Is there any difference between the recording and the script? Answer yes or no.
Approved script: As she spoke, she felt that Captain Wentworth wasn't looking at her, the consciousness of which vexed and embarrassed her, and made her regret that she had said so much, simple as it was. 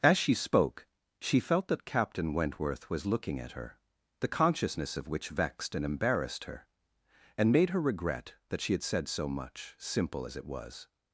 yes